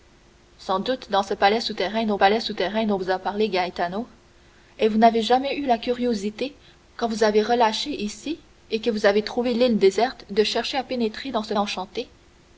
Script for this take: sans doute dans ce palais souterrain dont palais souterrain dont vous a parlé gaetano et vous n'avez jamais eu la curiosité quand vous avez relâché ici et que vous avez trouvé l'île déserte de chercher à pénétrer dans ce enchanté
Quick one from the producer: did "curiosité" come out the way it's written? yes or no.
yes